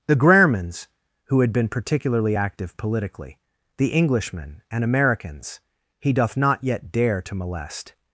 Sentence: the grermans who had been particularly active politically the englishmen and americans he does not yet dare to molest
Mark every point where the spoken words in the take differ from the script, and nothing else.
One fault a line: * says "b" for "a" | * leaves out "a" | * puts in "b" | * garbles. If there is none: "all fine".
* says "doth" for "does"